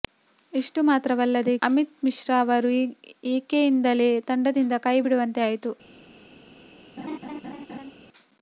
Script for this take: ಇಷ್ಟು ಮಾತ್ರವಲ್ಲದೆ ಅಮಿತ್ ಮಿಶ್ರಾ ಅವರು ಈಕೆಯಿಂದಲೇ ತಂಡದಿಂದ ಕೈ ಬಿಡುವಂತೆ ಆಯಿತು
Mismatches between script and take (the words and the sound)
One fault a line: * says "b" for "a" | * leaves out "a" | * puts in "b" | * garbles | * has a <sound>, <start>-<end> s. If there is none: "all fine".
* has a laugh, 7.0-7.9 s